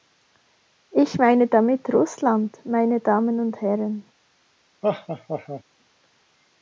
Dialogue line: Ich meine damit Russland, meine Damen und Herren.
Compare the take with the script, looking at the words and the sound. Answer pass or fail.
fail